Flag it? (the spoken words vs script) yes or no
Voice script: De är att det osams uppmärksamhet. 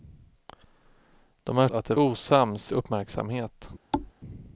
no